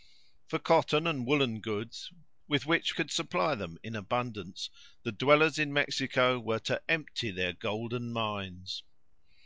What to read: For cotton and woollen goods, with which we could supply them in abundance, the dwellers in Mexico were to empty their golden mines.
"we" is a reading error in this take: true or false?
true